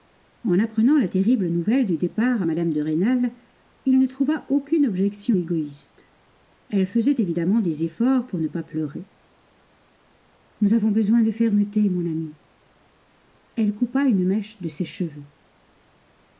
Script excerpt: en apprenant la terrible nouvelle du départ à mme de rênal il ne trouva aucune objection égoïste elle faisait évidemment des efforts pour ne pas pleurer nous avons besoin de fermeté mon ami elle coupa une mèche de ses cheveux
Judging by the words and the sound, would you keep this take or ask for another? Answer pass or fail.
pass